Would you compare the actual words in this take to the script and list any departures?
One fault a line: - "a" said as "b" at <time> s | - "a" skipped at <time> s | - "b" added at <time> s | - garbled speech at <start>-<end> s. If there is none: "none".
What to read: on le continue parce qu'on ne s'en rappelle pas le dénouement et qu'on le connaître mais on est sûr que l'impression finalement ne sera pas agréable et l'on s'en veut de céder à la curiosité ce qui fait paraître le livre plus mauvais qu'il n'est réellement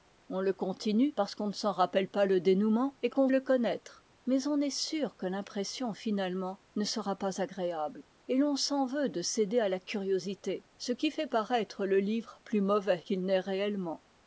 none